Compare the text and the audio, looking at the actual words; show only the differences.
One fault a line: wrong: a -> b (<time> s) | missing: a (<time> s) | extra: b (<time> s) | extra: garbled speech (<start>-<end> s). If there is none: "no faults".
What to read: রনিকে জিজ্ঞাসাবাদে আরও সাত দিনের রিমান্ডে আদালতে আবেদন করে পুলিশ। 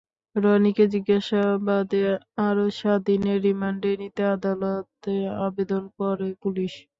extra: নিতে (4.0 s)